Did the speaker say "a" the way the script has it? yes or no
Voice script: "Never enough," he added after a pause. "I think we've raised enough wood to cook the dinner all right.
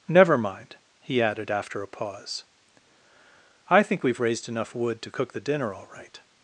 yes